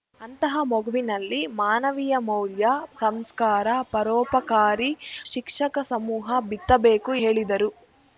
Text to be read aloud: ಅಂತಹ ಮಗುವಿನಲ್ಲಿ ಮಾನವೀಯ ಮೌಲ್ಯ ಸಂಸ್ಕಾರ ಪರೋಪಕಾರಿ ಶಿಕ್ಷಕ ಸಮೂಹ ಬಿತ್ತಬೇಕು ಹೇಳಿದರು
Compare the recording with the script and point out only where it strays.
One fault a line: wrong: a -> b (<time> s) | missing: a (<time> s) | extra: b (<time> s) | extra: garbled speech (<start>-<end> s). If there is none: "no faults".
no faults